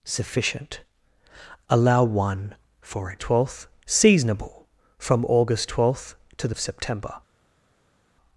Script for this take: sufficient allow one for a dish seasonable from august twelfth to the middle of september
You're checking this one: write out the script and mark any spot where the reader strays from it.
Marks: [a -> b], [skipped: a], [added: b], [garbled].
sufficient allow one for a [dish -> twelfth] seasonable from august twelfth to the [skipped: middle] of september